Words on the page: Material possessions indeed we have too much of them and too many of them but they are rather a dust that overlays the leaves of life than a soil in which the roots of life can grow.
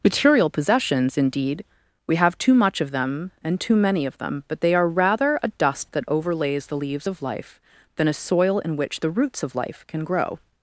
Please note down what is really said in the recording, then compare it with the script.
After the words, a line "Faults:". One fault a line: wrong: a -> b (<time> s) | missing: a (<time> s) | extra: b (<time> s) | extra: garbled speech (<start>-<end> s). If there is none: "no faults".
Material possessions indeed we have too much of them and too many of them but they are rather a dust that overlays the leaves of life than a soil in which the roots of life can grow.
Faults:
no faults